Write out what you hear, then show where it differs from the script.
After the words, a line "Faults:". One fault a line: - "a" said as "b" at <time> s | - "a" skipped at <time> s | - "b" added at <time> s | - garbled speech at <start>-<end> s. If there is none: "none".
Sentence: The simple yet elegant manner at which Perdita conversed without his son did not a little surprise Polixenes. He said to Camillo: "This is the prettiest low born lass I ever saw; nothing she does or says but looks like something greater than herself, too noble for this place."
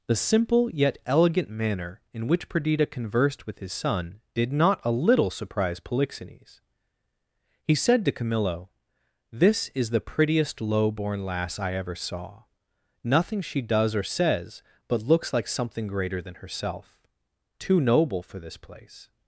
The simple yet elegant manner in which Perdita conversed with his son did not a little surprise Polixenes. He said to Camillo: "This is the prettiest low born lass I ever saw; nothing she does or says but looks like something greater than herself, too noble for this place."
Faults:
- "at" said as "in" at 2.1 s
- "without" said as "with" at 3.5 s